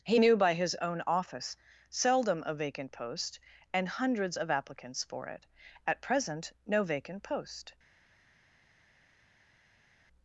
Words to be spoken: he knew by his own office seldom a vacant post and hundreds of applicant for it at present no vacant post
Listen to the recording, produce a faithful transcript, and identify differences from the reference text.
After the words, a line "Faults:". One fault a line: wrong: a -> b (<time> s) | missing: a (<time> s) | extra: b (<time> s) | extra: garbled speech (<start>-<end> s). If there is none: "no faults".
he knew by his own office seldom a vacant post and hundreds of applicants for it at present no vacant post
Faults:
wrong: applicant -> applicants (4.5 s)